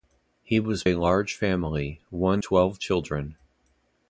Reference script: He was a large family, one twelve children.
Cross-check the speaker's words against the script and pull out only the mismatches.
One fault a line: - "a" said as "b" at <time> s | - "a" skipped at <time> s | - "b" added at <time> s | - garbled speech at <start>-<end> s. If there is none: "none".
none